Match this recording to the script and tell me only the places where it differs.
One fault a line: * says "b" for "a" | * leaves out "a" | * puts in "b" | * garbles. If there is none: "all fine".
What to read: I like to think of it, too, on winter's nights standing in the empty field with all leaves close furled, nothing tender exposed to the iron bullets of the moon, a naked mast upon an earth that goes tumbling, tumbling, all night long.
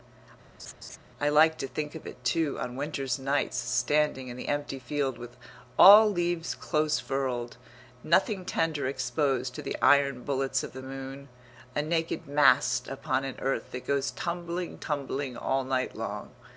all fine